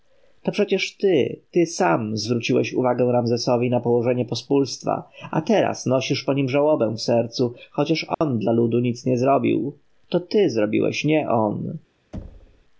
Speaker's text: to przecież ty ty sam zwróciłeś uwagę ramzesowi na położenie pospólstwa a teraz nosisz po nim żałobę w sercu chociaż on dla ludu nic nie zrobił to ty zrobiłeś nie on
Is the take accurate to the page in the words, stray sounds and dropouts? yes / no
no